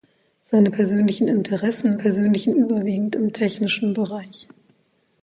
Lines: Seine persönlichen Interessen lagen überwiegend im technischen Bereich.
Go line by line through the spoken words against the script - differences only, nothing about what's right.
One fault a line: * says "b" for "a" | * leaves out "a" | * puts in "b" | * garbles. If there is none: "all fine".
* says "persönlichen" for "lagen"